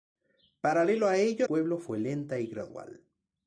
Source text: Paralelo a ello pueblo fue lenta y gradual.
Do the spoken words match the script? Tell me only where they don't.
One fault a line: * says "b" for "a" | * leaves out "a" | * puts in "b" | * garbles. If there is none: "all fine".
all fine